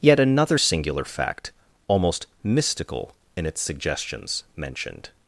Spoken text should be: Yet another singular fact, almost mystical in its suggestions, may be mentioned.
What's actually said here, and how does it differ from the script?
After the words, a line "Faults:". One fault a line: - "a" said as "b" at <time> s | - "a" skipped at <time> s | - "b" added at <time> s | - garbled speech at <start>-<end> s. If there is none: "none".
Yet another singular fact, almost mystical in its suggestions, mentioned.
Faults:
- "may be" skipped at 4.4 s